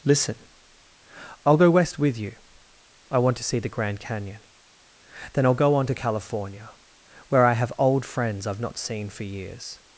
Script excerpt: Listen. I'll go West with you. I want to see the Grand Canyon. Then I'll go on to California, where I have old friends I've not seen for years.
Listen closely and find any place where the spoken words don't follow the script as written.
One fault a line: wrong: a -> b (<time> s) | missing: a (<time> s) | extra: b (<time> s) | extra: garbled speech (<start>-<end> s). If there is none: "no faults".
no faults